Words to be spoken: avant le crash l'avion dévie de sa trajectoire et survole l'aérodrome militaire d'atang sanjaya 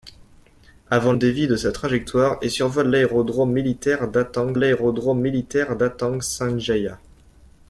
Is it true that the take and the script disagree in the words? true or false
true